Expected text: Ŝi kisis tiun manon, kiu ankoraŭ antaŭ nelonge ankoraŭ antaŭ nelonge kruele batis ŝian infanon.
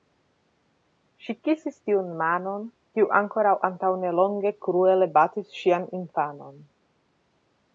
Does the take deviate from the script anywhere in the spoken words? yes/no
yes